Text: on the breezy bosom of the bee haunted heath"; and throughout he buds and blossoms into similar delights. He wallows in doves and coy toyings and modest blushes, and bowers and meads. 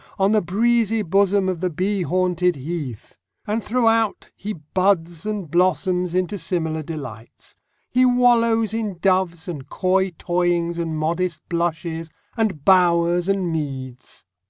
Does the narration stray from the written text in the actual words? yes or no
no